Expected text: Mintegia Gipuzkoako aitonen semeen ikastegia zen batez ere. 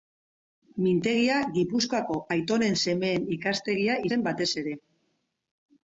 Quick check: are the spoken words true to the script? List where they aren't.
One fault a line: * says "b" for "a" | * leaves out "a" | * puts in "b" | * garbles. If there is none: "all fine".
all fine